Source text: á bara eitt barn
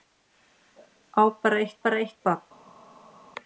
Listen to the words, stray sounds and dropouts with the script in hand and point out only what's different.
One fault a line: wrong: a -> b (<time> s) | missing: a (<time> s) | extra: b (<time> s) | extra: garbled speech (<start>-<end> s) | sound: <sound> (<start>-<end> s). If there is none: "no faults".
extra: bara eitt (1.8 s)